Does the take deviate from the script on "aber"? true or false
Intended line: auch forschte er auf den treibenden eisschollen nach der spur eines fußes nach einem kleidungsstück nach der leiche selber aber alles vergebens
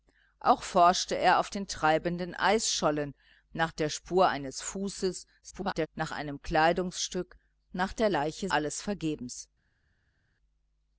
true